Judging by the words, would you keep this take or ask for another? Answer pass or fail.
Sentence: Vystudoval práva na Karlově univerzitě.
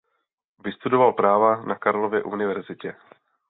pass